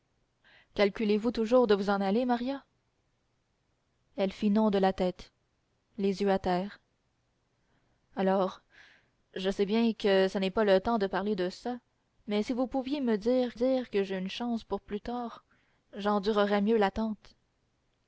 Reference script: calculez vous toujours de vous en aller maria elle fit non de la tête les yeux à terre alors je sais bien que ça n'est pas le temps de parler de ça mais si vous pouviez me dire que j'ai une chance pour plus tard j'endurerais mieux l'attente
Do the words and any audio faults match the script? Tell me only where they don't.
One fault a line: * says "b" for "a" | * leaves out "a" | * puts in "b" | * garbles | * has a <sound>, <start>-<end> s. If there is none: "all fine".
* puts in "dire"